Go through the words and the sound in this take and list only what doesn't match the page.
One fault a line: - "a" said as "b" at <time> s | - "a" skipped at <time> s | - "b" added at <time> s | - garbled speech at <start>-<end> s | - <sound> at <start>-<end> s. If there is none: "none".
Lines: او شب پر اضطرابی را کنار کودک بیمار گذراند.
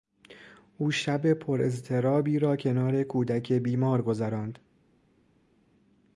none